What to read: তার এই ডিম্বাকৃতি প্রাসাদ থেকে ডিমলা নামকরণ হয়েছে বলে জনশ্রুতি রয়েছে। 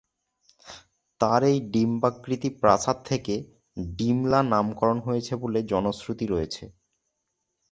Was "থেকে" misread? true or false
false